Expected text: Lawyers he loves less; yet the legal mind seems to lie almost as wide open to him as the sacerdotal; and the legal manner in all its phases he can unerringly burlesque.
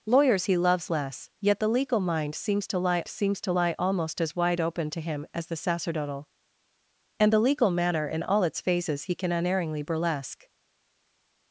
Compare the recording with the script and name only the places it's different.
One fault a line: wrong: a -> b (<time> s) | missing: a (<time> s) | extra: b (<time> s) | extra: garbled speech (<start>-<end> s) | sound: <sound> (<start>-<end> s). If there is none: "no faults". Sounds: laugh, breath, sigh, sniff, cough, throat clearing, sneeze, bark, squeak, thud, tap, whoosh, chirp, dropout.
extra: seems to lie (3.1 s)